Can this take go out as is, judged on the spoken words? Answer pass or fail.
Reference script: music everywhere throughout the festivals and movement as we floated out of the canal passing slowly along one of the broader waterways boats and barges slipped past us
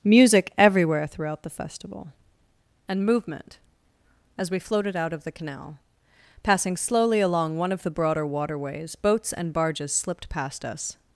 fail